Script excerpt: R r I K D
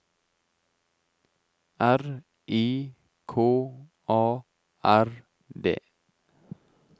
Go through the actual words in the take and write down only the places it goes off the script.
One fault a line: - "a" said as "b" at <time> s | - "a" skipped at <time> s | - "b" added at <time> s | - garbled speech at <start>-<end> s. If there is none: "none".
- "r" skipped at 2.2 s
- "A R" added at 4.1 s